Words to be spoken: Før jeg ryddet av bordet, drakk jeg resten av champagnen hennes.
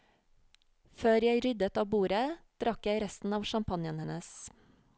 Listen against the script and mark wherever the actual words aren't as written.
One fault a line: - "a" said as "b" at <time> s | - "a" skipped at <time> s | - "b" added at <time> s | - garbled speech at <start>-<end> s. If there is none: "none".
none